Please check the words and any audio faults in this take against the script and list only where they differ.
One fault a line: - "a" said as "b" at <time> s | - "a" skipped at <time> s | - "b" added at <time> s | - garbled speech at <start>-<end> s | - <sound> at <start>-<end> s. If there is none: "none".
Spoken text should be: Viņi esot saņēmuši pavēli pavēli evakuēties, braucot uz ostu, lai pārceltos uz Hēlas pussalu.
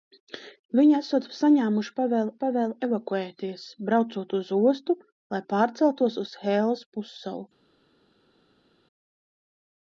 none